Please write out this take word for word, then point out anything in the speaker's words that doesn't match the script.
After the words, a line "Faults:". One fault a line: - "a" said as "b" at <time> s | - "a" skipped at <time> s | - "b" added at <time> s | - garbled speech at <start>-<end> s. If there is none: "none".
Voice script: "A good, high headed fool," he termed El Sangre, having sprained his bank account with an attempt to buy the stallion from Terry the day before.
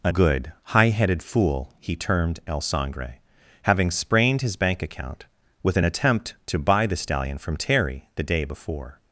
"A good, high headed fool," he termed El Sangre, having sprained his bank account with an attempt to buy the stallion from Terry the day before.
Faults:
none